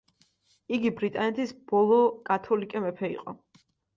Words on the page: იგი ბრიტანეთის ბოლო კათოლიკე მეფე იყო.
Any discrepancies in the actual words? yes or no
no